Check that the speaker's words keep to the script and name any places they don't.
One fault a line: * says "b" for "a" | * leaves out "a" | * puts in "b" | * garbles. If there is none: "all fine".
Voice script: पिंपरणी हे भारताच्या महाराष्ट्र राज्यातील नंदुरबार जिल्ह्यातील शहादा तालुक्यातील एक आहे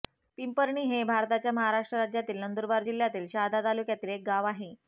* puts in "गाव"